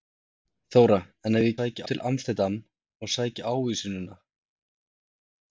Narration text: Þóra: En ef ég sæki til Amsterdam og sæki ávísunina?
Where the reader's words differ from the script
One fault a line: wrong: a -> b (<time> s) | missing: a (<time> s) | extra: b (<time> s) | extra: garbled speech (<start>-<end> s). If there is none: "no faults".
no faults